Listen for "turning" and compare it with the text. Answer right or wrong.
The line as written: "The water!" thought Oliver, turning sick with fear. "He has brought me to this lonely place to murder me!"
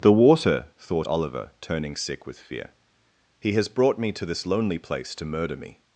right